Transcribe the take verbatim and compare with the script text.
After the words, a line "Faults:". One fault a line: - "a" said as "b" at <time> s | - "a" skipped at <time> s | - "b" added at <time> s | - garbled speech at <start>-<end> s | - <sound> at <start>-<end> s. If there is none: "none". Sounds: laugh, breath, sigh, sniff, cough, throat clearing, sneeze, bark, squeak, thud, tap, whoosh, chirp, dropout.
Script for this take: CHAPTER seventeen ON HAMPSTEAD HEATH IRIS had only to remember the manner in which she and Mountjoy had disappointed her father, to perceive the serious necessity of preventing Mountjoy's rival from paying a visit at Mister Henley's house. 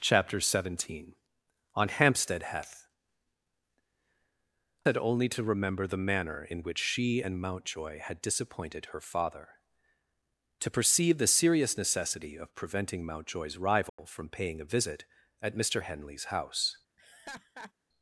CHAPTER seventeen ON HAMPSTEAD HEATH Had only to remember the manner in which she and Mountjoy had disappointed her father, to perceive the serious necessity of preventing Mountjoy's rival from paying a visit at Mister Henley's house.
Faults:
- "IRIS" skipped at 2.9 s
- dropout at 13.9-14.0 s
- laugh at 17.0-17.7 s